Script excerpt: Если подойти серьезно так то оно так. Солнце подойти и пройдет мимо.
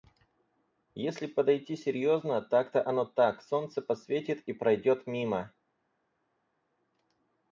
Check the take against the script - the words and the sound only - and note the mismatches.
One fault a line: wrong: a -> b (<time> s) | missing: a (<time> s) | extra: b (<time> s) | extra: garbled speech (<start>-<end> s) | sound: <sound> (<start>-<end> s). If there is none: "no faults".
wrong: подойти -> посветит (3.8 s)